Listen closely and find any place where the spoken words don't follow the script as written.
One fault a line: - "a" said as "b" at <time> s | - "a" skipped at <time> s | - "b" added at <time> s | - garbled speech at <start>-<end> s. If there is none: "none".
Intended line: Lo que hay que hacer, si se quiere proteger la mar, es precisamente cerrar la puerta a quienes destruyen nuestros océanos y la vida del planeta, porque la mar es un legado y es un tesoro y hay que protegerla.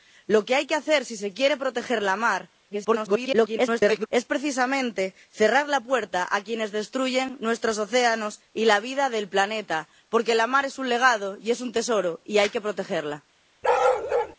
- garbled speech at 2.7-4.1 s